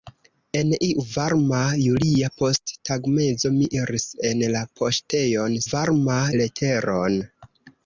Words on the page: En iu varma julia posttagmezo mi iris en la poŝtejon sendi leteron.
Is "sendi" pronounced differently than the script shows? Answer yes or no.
yes